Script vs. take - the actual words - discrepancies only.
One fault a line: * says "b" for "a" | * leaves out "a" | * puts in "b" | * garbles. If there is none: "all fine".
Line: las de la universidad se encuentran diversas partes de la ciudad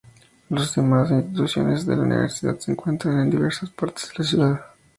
* puts in "demás instituciones"
* puts in "en"